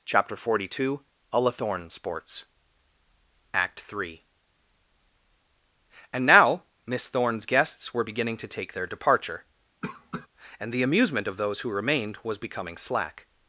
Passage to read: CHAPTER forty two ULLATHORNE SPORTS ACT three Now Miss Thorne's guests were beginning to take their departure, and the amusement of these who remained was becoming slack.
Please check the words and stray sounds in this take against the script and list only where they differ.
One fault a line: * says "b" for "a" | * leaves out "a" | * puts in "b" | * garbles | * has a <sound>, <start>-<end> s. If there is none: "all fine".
* puts in "And"
* has a cough, 9.8-10.3 s
* says "those" for "these"